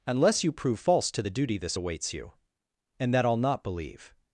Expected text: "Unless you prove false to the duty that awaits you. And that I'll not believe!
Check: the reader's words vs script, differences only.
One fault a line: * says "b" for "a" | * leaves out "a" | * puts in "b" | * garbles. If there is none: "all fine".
* says "this" for "that"